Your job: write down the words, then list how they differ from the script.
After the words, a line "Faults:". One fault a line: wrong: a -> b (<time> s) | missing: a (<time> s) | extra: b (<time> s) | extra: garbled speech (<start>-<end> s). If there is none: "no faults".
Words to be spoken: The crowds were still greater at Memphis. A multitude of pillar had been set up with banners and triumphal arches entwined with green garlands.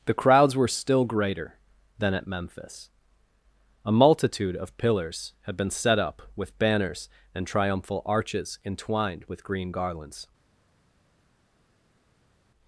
The crowds were still greater than at Memphis. A multitude of pillars had been set up with banners and triumphal arches entwined with green garlands.
Faults:
extra: than (2.0 s)
wrong: pillar -> pillars (4.8 s)